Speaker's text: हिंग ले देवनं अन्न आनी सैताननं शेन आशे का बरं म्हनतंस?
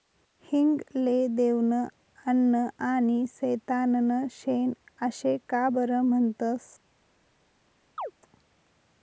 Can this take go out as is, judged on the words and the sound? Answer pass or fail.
fail